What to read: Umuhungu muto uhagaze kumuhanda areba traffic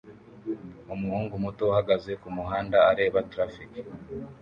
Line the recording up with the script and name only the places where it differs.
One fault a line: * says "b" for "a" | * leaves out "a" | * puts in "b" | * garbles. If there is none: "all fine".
all fine